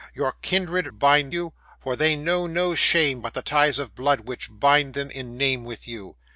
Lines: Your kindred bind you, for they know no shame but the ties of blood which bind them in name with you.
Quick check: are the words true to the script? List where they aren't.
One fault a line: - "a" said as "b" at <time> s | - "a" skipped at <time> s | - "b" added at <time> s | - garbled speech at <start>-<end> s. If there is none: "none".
none